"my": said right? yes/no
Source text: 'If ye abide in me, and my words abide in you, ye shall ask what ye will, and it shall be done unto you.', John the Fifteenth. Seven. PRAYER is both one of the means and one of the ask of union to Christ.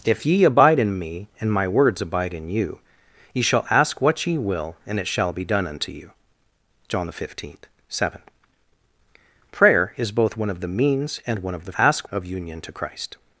yes